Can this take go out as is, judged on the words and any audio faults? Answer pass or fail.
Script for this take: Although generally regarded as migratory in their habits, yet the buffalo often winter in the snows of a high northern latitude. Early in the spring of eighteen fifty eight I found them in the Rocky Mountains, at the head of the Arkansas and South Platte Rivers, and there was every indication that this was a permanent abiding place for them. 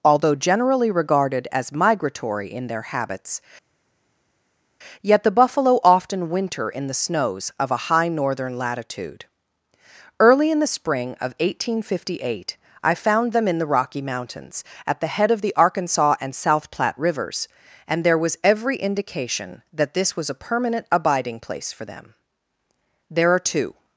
fail